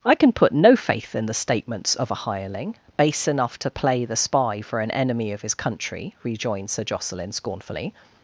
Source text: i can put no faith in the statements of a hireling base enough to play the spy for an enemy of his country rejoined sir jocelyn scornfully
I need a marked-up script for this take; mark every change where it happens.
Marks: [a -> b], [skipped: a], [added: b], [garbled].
i can put no faith in the statements of a hireling base enough to play the spy for an enemy of his country rejoined sir jocelyn scornfully